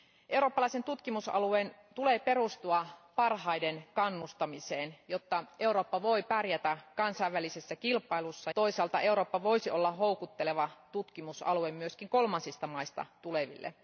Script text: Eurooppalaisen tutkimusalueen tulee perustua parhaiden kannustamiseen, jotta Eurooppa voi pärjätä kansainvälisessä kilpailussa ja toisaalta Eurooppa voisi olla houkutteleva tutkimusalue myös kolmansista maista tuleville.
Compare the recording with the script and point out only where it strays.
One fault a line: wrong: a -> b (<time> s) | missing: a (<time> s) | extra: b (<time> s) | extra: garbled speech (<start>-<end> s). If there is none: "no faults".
missing: ja (8.5 s)